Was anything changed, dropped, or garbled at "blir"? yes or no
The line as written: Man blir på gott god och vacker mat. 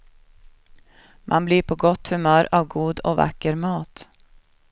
no